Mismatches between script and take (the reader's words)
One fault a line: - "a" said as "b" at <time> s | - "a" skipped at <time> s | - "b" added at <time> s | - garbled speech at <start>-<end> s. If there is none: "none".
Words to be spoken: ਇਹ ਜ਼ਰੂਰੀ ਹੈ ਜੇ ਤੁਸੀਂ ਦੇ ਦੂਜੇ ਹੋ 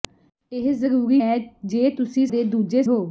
none